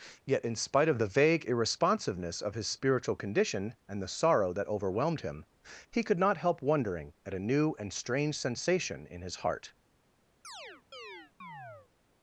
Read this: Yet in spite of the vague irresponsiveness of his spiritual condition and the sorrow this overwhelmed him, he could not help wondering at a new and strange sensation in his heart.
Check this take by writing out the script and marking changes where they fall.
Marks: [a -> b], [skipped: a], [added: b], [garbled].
Yet in spite of the vague irresponsiveness of his spiritual condition and the sorrow [this -> that] overwhelmed him, he could not help wondering at a new and strange sensation in his heart.